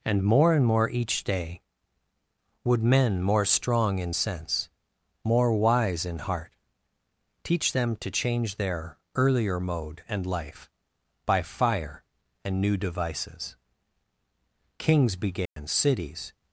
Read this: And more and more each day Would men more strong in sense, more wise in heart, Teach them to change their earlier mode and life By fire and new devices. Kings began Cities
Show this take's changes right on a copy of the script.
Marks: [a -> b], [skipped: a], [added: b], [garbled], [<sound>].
And more and more each day Would men more strong in sense, more wise in heart, Teach them to change their earlier mode and life By fire and new devices. Kings began [dropout] Cities